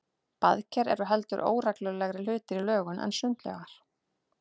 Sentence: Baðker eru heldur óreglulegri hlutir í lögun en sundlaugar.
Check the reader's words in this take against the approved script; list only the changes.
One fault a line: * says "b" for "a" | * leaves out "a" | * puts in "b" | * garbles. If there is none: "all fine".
all fine